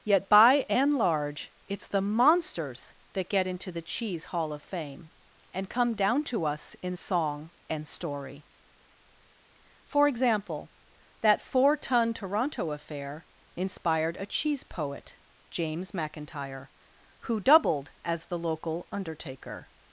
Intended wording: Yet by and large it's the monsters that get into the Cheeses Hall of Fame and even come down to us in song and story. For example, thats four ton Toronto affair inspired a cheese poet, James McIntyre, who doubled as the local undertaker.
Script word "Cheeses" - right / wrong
wrong